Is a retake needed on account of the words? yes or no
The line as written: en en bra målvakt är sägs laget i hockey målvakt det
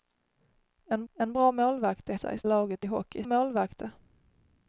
no